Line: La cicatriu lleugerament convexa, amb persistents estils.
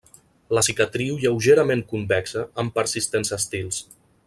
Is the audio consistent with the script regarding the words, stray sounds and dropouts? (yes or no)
yes